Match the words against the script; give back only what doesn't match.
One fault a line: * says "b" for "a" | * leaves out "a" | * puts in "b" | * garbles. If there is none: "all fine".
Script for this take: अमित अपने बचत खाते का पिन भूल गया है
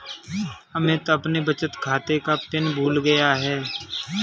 all fine